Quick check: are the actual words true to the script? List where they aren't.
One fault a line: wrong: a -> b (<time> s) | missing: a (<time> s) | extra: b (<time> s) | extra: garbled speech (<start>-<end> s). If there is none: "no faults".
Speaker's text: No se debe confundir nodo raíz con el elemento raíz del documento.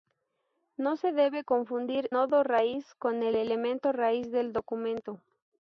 no faults